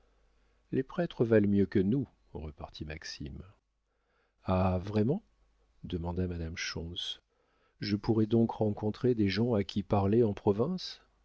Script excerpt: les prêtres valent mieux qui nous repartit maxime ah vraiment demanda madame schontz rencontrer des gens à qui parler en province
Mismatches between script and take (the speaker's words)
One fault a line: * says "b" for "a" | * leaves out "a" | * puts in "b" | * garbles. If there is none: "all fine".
* says "que" for "qui"
* puts in "je pourrai donc"